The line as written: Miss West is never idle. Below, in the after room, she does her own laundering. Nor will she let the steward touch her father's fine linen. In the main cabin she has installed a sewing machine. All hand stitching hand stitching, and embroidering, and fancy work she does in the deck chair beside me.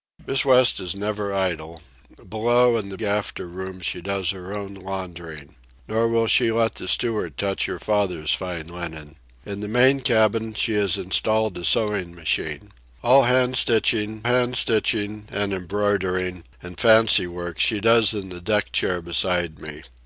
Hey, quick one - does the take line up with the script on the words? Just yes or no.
yes